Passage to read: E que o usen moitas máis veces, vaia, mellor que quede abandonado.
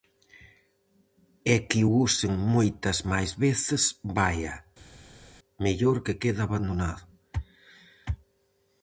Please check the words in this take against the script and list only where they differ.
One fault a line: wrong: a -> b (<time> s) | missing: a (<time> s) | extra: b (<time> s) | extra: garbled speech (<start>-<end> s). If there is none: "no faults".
no faults